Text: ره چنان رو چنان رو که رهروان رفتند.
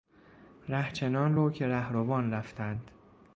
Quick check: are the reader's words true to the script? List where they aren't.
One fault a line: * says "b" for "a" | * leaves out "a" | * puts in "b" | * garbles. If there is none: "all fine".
* leaves out "چنان رو"